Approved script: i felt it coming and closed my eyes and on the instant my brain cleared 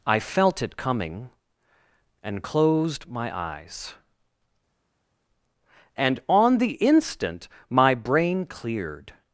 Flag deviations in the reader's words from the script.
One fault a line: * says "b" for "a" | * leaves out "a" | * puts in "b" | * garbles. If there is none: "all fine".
all fine